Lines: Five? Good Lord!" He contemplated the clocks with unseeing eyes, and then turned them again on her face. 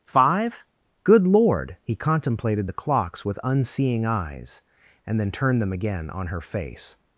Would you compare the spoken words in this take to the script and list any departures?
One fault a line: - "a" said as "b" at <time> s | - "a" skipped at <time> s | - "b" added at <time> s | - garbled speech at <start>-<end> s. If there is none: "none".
none